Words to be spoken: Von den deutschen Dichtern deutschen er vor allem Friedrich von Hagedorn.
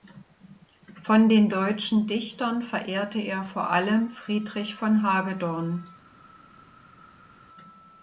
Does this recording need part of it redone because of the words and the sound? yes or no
yes